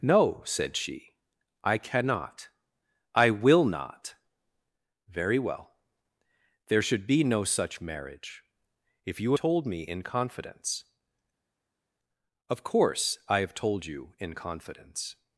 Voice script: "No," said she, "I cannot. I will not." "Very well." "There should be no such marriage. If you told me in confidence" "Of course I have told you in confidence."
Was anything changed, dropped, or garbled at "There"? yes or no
no